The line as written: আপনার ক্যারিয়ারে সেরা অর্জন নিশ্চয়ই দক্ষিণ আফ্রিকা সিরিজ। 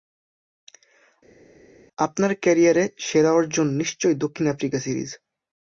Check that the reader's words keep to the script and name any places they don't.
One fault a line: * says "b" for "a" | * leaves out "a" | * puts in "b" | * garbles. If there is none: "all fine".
all fine